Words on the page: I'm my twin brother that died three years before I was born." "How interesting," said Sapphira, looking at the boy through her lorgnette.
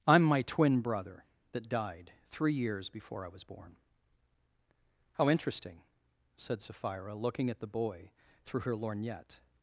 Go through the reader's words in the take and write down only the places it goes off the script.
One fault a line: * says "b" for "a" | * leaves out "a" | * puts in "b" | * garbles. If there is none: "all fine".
all fine